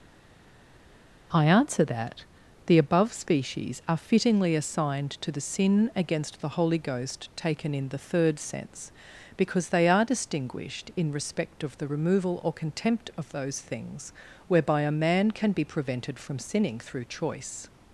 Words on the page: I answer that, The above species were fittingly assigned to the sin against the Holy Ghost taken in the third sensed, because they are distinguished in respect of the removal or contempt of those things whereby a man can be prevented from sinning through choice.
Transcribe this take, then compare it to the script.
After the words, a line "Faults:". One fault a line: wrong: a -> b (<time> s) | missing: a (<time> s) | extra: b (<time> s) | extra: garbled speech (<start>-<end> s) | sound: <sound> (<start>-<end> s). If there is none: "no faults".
I answer that, The above species are fittingly assigned to the sin against the Holy Ghost taken in the third sense, because they are distinguished in respect of the removal or contempt of those things whereby a man can be prevented from sinning through choice.
Faults:
wrong: were -> are (3.9 s)
wrong: sensed -> sense (8.4 s)